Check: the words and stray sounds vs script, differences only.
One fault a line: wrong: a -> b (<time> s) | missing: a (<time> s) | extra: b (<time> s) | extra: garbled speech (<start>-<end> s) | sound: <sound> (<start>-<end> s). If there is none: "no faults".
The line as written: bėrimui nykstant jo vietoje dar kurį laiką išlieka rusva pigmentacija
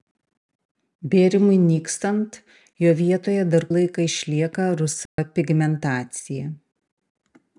missing: kurį (3.7 s)
sound: dropout (5.1-5.2 s)